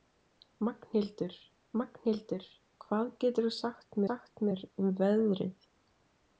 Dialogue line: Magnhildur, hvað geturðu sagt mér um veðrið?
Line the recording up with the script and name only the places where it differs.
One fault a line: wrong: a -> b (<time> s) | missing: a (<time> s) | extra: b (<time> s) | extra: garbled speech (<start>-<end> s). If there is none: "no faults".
extra: magnhildur (1.8 s)
extra: sagt (4.1 s)